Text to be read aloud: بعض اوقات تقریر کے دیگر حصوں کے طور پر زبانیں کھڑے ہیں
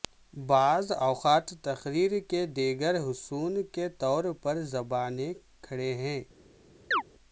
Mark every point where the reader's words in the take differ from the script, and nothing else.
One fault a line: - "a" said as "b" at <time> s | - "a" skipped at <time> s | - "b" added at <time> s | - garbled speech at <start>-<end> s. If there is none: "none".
none